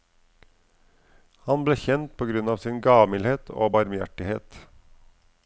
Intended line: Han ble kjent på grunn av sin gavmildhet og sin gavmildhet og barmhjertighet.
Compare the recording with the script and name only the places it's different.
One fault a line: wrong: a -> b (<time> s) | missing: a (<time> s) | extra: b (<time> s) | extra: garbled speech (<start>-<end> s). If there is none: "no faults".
missing: sin gavmildhet og (3.8 s)